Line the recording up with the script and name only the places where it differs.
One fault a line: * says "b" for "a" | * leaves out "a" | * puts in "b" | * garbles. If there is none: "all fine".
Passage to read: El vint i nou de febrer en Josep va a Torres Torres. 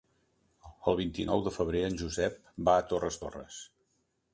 all fine